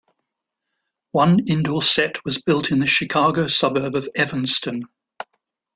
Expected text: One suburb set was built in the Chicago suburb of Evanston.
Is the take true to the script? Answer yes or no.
no